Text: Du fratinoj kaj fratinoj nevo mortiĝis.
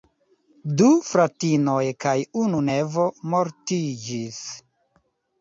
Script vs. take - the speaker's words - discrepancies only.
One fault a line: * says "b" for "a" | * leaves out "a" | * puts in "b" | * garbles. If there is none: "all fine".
* says "unu" for "fratinoj"